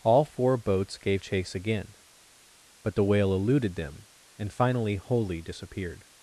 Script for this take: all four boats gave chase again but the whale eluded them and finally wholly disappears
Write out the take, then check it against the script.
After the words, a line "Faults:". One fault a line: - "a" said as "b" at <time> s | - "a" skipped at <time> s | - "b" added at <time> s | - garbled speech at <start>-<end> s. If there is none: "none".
all four boats gave chase again but the whale eluded them and finally wholly disappeared
Faults:
- "disappears" said as "disappeared" at 5.4 s